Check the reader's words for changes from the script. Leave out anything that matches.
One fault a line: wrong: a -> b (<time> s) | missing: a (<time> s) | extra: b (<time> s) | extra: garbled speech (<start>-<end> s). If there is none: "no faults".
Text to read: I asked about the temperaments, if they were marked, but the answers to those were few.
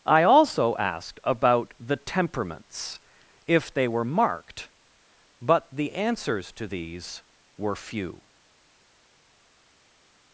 extra: also (0.2 s)
wrong: those -> these (6.6 s)